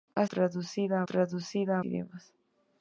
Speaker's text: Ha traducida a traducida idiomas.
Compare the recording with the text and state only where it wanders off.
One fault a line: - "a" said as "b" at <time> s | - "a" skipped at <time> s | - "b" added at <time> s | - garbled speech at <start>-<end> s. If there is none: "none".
none